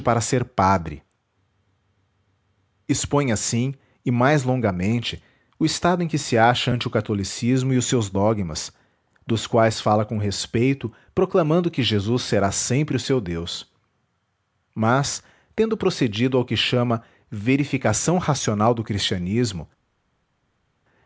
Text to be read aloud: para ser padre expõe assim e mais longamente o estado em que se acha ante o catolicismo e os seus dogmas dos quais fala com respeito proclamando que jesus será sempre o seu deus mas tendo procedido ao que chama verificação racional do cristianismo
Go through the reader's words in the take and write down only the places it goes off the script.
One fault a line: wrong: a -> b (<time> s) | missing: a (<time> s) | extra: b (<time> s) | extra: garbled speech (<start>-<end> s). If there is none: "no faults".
no faults